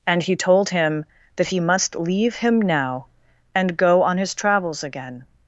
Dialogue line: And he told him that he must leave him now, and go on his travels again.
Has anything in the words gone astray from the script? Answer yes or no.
no